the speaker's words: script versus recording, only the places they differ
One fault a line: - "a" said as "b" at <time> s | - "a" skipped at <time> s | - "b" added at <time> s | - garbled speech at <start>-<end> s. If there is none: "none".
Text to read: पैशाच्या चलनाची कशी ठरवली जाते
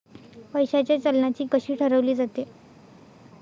none